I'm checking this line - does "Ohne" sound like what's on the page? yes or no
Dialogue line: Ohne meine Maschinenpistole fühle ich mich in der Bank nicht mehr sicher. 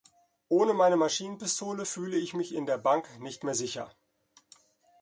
yes